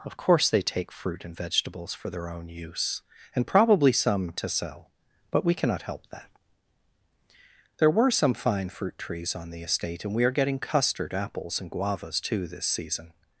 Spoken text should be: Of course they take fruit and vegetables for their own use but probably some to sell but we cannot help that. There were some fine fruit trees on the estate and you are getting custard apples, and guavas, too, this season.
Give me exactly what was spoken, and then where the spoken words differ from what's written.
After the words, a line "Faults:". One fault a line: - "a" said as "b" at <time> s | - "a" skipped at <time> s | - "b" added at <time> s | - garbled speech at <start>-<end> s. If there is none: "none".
Of course they take fruit and vegetables for their own use and probably some to sell but we cannot help that. There were some fine fruit trees on the estate and we are getting custard apples, and guavas, too, this season.
Faults:
- "but" said as "and" at 3.4 s
- "you" said as "we" at 10.1 s